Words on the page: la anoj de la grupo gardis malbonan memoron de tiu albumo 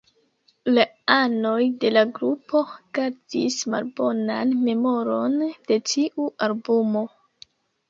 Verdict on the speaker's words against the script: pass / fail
pass